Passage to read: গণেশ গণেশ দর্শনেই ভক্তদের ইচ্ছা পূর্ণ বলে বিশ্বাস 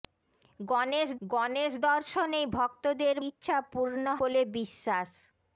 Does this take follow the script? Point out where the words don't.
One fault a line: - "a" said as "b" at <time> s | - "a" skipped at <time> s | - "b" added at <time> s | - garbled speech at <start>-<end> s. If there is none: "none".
none